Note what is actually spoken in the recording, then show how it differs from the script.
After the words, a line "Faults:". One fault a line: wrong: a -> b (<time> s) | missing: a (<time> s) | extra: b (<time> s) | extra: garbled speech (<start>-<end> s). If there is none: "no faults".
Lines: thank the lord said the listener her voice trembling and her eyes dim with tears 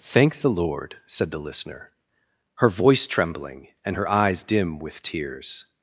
thank the lord said the listener her voice trembling and her eyes dim with tears
Faults:
no faults